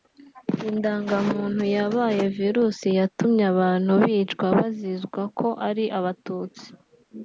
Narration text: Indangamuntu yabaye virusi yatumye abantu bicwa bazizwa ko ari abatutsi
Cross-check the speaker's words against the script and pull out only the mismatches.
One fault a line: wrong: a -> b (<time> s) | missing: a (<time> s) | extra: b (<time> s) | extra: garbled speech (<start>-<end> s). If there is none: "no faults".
no faults